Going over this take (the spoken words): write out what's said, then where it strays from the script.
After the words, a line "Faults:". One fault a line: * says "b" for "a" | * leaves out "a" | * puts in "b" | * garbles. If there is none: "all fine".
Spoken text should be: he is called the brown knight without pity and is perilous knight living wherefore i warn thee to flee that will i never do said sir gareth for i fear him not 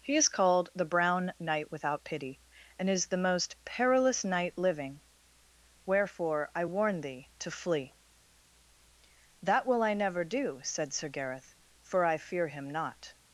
he is called the brown knight without pity and is the most perilous knight living wherefore i warn thee to flee that will i never do said sir gareth for i fear him not
Faults:
* puts in "the most"